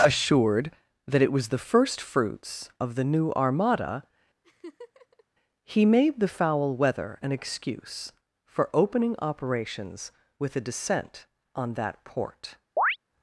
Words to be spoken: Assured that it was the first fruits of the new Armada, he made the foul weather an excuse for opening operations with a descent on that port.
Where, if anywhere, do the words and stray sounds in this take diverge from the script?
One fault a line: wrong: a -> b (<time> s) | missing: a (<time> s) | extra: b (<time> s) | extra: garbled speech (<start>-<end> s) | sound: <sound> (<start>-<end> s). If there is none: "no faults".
sound: laugh (4.4-5.2 s)
sound: chirp (12.8-13.0 s)